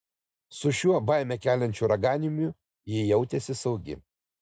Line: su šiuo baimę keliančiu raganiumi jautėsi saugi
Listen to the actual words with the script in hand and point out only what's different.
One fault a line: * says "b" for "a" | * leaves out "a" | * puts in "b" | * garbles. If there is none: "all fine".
* puts in "ji"